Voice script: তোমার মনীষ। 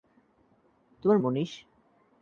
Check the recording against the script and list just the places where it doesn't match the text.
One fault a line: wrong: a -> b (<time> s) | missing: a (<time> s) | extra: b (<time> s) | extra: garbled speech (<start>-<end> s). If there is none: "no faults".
no faults